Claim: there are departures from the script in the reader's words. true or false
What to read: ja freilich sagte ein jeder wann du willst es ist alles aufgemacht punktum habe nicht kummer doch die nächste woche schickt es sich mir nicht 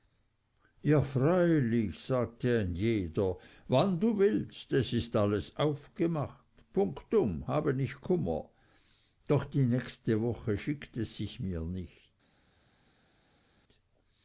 false